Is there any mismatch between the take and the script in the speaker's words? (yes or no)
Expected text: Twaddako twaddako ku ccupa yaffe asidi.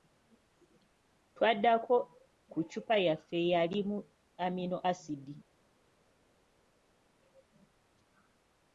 yes